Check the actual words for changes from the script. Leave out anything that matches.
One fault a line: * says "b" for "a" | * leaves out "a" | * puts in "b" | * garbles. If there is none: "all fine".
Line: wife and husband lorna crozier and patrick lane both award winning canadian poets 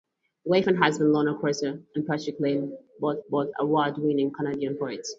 * puts in "both"